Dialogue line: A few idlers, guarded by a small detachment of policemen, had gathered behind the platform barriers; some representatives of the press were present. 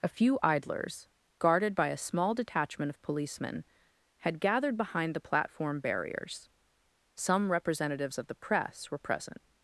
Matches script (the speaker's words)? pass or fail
pass